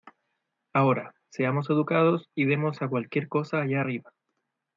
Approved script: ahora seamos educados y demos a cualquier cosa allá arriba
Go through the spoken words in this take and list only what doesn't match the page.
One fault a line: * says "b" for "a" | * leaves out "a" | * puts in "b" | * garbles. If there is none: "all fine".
all fine